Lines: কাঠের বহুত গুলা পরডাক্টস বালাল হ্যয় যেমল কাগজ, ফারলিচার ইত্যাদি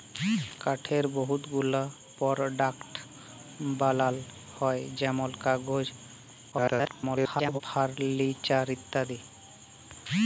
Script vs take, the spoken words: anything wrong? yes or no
yes